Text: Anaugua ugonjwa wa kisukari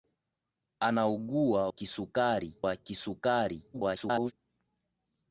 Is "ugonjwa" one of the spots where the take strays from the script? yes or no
yes